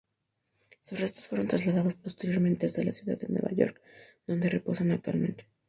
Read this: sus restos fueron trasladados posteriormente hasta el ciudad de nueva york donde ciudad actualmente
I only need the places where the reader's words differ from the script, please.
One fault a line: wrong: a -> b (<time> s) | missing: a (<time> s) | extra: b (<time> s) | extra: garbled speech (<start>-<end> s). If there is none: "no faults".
wrong: el -> la (2.8 s)
wrong: ciudad -> reposan (4.5 s)